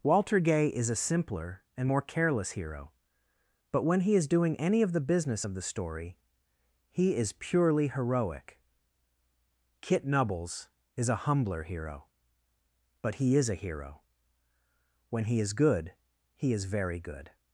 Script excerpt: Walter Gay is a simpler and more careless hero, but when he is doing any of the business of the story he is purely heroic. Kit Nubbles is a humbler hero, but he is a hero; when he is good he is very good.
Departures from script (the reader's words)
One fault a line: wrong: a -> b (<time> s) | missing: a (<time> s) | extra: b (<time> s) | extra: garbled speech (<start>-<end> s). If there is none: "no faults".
no faults